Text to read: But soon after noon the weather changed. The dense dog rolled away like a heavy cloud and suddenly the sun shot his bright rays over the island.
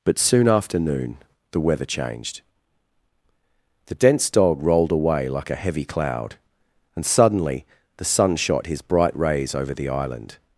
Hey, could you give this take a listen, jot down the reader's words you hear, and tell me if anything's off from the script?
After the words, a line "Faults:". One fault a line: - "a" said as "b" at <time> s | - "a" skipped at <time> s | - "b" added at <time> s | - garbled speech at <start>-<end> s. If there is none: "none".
But soon after noon the weather changed. The dense dog rolled away like a heavy cloud and suddenly the sun shot his bright rays over the island.
Faults:
none